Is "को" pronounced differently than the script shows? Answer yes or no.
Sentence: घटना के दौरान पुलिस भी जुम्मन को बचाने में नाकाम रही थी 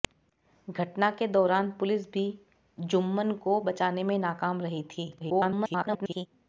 no